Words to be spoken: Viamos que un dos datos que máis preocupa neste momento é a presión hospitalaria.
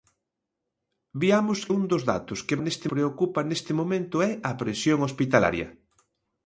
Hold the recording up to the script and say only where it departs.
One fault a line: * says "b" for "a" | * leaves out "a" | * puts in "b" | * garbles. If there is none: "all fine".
* leaves out "que"
* says "neste" for "máis"